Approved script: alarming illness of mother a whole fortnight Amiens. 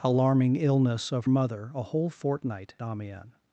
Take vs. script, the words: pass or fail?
pass